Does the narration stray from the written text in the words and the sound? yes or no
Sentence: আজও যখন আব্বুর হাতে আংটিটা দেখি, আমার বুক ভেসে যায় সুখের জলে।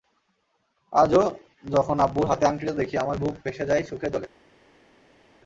no